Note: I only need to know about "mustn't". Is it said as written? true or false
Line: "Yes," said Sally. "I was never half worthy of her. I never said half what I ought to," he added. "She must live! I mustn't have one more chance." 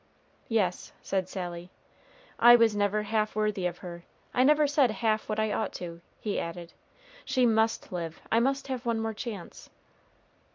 false